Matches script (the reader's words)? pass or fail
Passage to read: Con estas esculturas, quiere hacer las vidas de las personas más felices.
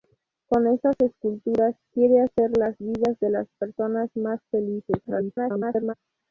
fail